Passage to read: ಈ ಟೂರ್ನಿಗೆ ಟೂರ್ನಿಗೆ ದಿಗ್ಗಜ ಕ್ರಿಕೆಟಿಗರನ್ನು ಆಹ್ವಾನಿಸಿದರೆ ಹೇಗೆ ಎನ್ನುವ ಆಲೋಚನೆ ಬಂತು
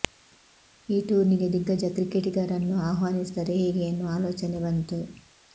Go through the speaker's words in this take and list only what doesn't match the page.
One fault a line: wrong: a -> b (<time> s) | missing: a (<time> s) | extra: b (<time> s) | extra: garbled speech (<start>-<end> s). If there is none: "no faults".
missing: ಟೂರ್ನಿಗೆ (1.5 s)